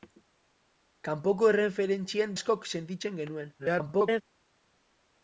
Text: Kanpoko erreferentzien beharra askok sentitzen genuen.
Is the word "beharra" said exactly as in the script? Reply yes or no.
no